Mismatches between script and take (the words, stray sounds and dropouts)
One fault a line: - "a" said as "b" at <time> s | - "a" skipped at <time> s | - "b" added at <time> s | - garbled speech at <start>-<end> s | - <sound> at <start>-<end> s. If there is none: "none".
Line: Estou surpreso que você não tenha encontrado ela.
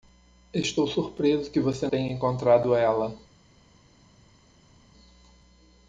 - "não" skipped at 1.9 s